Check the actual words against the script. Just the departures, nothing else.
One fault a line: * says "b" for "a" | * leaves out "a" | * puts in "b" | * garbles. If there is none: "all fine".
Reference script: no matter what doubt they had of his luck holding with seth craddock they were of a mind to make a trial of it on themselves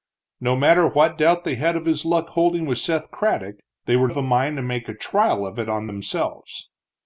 all fine